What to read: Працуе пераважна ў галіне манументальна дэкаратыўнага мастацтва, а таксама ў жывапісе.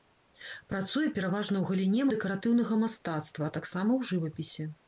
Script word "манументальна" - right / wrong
wrong